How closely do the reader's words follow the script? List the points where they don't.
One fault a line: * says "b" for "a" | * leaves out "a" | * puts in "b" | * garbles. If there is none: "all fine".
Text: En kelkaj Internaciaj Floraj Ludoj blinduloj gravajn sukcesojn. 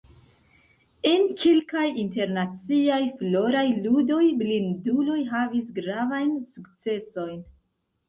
* puts in "havis"